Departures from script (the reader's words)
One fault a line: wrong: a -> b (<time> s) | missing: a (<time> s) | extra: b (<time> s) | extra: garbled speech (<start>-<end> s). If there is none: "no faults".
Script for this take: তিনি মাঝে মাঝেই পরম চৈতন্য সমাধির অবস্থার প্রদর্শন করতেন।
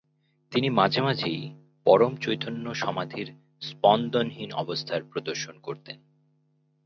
extra: স্পন্দনহীন (3.6 s)